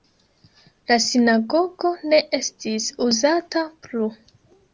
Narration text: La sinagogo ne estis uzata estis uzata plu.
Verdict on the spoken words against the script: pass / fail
fail